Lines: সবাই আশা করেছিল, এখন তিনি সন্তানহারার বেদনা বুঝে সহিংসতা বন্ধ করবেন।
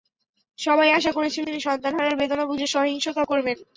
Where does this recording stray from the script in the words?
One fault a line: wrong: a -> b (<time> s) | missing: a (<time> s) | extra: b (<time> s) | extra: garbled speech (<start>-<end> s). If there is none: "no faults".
missing: এখন (1.4 s)
missing: বন্ধ (3.2 s)